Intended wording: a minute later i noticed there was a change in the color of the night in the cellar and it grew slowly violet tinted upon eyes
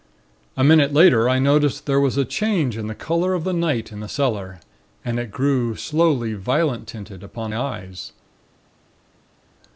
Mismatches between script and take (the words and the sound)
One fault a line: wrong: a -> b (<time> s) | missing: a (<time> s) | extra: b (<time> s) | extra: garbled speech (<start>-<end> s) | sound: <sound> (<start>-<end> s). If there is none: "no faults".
no faults